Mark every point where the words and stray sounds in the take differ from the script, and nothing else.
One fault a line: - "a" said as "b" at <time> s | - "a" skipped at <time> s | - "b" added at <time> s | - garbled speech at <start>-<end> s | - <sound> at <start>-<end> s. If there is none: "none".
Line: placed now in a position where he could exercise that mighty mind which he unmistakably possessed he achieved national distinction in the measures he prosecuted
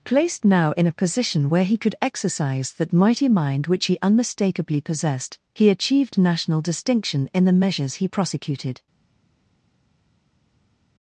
none